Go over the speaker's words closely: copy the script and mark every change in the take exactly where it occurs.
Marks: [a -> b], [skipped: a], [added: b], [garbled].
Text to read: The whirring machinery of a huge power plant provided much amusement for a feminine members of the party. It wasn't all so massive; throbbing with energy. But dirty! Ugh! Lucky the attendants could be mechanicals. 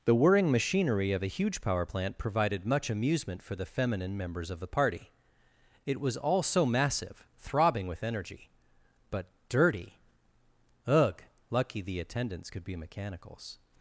The whirring machinery of a huge power plant provided much amusement for [a -> the] feminine members of the party. It [wasn't -> was] all so massive; throbbing with energy. But dirty! Ugh! Lucky the attendants could be mechanicals.